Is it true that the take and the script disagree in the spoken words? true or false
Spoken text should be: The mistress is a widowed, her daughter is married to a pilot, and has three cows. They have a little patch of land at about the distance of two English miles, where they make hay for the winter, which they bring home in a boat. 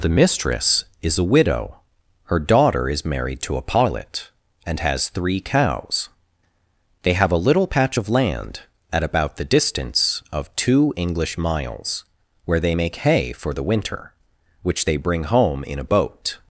true